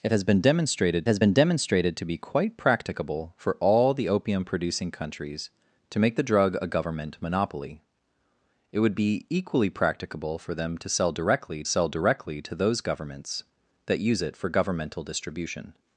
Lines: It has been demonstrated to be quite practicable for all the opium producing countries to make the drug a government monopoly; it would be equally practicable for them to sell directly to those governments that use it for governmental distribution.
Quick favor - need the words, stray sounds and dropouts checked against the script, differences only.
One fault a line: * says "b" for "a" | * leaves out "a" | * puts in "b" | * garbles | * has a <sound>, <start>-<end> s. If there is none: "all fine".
* puts in "has been demonstrated"
* puts in "sell directly"